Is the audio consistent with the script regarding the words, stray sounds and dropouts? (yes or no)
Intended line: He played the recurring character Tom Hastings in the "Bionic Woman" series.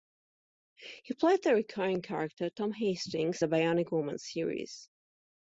no